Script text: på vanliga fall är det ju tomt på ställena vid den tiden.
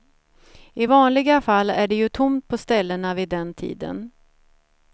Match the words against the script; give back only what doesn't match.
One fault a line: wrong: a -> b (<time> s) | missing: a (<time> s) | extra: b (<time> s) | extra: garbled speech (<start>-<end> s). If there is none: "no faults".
wrong: på -> I (0.7 s)